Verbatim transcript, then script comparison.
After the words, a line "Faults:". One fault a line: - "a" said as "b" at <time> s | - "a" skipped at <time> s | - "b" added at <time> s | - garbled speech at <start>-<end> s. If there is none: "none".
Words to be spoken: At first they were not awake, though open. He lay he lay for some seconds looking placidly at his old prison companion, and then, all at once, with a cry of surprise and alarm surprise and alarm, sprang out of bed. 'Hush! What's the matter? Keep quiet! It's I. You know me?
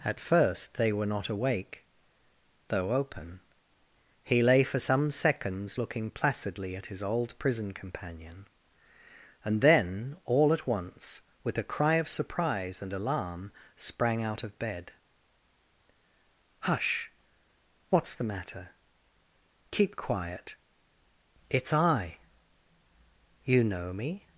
At first they were not awake, though open. He lay for some seconds looking placidly at his old prison companion, and then, all at once, with a cry of surprise and alarm, sprang out of bed. 'Hush! What's the matter? Keep quiet! It's I. You know me?
Faults:
- "he lay" skipped at 4.6 s
- "surprise and alarm" skipped at 13.5 s